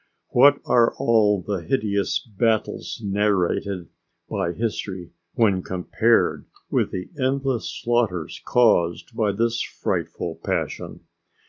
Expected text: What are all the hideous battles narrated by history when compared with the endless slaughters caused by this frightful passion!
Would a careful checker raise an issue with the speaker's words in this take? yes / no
no